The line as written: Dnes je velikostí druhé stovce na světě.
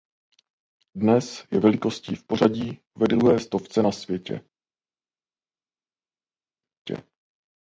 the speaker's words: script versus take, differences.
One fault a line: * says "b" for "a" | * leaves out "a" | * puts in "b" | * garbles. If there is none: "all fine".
* puts in "v pořadí ve"